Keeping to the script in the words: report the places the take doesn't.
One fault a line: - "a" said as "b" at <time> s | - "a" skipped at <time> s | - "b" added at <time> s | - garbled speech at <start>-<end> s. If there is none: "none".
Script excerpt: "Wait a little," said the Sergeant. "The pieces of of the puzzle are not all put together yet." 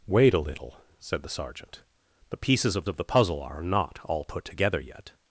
none